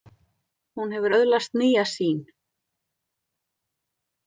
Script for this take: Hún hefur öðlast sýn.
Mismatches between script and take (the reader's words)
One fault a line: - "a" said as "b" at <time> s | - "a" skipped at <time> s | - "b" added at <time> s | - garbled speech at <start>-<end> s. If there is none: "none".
- "nýja" added at 1.6 s